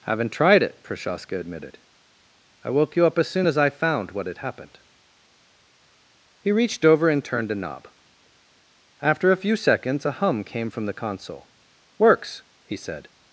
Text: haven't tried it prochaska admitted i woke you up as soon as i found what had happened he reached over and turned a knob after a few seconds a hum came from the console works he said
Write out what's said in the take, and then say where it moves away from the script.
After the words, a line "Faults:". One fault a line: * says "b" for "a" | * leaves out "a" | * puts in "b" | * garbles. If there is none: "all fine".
haven't tried it prochaska admitted i woke you up as soon as i found what had happened he reached over and turned a knob after a few seconds a hum came from the console works he said
Faults:
all fine